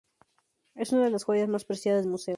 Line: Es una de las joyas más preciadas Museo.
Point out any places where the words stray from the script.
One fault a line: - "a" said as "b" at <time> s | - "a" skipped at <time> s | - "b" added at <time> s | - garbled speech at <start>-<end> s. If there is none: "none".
none